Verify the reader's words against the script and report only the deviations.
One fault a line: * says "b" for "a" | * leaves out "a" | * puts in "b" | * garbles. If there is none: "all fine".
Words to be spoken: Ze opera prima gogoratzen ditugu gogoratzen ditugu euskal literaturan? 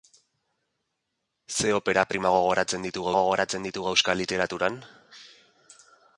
all fine